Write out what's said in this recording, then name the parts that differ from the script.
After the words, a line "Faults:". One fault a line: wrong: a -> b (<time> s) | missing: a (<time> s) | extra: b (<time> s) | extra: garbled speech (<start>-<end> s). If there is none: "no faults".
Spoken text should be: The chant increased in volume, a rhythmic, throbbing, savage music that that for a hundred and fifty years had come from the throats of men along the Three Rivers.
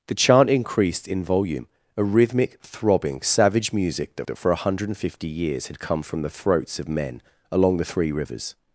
The chant increased in volume, a rhythmic, throbbing, savage music that that for a hundred and fifty years had come from the throats of men along the Three Rivers.
Faults:
no faults